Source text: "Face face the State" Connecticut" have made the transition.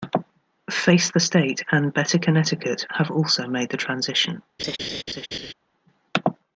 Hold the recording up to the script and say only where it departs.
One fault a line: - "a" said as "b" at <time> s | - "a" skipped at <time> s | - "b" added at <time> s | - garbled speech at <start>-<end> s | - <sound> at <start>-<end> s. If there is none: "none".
- "face" skipped at 1.1 s
- "and Better" added at 1.7 s
- "also" added at 3.1 s
- laugh at 4.6-5.5 s